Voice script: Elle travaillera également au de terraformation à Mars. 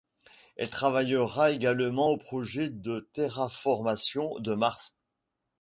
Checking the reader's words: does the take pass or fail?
fail